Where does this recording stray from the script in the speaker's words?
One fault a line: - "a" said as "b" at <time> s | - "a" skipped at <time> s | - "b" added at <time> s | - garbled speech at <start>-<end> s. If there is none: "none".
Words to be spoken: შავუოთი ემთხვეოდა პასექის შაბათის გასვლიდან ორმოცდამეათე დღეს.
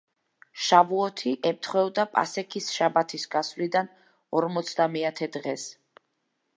none